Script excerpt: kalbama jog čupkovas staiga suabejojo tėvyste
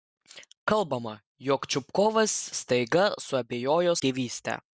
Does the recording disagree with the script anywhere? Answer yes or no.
no